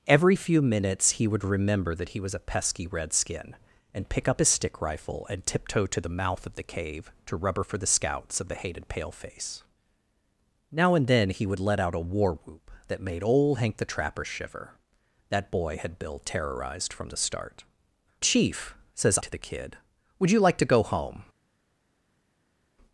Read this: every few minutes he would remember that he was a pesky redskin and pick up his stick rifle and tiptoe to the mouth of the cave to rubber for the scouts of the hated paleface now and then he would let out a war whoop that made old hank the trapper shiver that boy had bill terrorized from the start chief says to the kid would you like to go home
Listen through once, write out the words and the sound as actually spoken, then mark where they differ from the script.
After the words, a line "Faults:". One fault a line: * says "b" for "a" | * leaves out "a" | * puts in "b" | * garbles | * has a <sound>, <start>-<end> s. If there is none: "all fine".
every few minutes he would remember that he was a pesky redskin and pick up his stick rifle and tiptoe to the mouth of the cave to rubber for the scouts of the hated paleface now and then he would let out a war whoop that made old hank the trapper shiver that boy had bill terrorized from the start chief says to the kid would you like to go home
Faults:
all fine